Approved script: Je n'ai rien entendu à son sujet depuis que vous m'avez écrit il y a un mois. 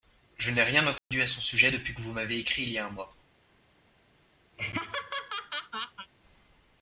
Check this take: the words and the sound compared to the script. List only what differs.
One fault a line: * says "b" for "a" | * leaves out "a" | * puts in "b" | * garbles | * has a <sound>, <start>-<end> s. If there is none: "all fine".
* has a dropout, 1.0-1.1 s
* has a laugh, 4.5-6.1 s